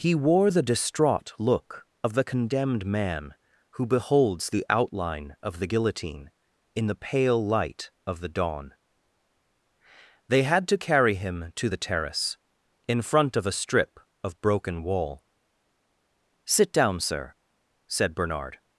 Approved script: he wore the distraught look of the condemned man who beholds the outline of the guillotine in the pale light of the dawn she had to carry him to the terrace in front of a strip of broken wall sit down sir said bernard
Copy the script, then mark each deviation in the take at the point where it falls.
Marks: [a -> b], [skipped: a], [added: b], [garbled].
he wore the distraught look of the condemned man who beholds the outline of the guillotine in the pale light of the dawn [she -> they] had to carry him to the terrace in front of a strip of broken wall sit down sir said bernard